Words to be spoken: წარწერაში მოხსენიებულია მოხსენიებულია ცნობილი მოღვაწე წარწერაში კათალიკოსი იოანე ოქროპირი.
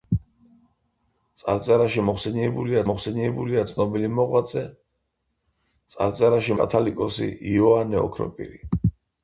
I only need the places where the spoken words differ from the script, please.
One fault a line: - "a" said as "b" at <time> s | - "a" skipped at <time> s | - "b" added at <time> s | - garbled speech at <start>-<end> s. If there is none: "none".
none